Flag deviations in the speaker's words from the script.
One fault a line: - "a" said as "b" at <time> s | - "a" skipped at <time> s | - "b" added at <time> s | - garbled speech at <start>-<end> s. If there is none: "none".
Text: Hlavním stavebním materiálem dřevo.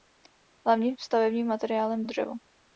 none